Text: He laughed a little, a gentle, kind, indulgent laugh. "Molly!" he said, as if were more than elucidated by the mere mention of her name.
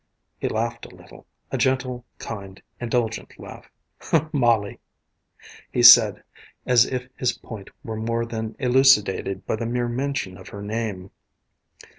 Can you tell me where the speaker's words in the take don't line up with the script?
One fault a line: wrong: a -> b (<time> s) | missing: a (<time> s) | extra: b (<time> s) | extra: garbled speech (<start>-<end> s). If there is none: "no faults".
extra: his point (7.2 s)